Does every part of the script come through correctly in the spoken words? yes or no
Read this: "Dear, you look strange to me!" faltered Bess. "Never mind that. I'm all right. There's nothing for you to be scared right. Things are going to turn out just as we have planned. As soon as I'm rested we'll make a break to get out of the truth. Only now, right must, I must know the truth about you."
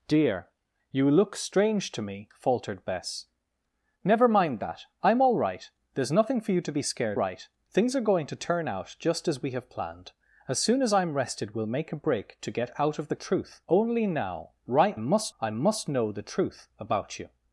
yes